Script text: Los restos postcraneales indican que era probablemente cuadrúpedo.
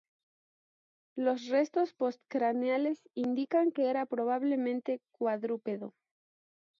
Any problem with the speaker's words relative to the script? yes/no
no